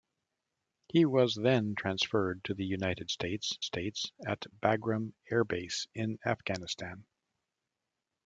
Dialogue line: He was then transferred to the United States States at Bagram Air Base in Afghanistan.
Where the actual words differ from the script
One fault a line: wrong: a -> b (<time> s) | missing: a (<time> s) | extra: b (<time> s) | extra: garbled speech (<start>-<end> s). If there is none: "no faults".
no faults